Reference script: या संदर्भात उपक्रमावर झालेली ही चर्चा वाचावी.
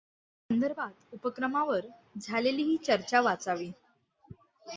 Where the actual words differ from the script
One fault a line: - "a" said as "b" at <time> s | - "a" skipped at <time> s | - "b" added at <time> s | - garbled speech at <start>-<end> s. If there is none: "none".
none